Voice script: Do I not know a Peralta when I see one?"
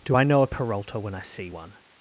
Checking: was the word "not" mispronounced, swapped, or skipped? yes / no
yes